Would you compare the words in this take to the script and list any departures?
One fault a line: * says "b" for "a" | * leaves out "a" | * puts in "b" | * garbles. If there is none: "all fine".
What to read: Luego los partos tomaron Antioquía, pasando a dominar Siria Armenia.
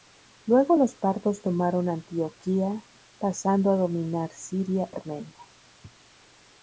all fine